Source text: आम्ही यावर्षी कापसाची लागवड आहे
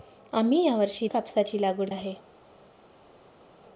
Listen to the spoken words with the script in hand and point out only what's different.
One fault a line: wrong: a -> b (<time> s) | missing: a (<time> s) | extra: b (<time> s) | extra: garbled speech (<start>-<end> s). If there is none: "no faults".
no faults